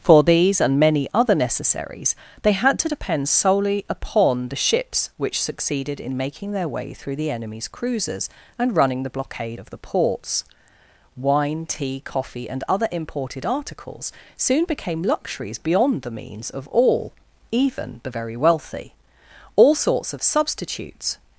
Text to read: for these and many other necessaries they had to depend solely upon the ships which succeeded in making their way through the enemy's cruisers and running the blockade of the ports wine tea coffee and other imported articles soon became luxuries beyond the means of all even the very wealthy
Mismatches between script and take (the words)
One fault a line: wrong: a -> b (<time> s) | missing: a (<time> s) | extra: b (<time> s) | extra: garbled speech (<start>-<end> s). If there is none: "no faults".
extra: all sorts of substitutes (19.5 s)